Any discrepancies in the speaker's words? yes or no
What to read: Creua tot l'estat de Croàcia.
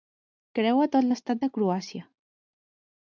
no